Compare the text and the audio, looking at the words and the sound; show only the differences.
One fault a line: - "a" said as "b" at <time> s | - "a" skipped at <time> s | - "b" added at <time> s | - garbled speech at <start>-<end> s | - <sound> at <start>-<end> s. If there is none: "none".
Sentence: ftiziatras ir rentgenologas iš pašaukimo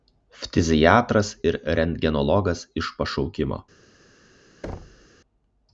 - thud at 4.6-5.1 s